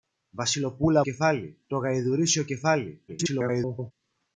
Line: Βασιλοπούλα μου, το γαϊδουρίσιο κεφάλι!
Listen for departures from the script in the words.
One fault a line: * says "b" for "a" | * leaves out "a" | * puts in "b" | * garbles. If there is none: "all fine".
* says "κεφάλι" for "μου"
* garbles